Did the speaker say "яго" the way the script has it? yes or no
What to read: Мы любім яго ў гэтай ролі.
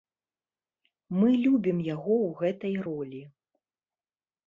yes